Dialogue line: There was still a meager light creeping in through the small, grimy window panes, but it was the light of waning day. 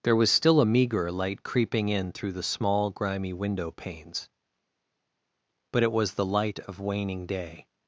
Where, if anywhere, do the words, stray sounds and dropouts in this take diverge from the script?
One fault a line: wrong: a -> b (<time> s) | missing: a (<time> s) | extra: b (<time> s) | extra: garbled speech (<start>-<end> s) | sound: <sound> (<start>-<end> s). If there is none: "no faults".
no faults